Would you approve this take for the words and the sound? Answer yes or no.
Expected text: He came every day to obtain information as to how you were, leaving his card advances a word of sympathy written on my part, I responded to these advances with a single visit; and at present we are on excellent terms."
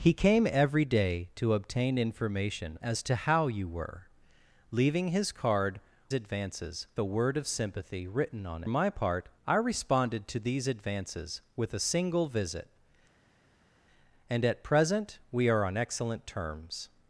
yes